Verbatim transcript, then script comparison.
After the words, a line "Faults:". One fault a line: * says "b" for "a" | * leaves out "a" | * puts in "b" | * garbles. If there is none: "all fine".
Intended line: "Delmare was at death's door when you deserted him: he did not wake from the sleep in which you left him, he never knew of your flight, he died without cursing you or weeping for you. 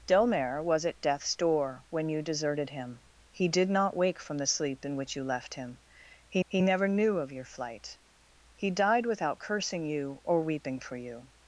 "Delmare was at death's door when you deserted him: he did not wake from the sleep in which you left him, he he never knew of your flight, he died without cursing you or weeping for you.
Faults:
* puts in "he"